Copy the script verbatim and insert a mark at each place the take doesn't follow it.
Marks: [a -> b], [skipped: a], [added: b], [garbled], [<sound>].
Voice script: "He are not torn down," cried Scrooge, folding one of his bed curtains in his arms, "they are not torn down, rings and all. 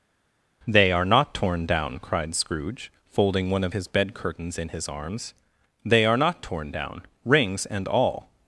["He -> They] are not torn down," cried Scrooge, folding one of his bed curtains in his arms, "they are not torn down, rings and all.